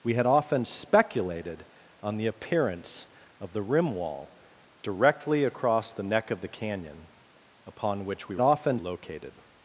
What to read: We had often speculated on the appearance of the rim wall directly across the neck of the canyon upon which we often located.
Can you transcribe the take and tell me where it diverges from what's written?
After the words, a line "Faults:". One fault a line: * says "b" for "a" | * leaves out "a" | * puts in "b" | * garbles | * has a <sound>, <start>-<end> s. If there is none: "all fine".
We had often speculated on the appearance of the rim wall directly across the neck of the canyon upon which we often located.
Faults:
all fine